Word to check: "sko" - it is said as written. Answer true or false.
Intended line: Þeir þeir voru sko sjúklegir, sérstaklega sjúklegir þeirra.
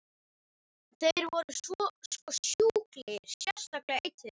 true